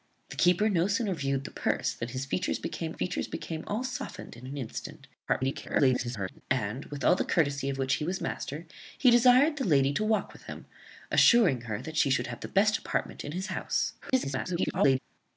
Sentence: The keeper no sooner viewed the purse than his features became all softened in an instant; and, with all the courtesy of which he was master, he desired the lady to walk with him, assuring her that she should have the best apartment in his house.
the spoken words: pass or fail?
fail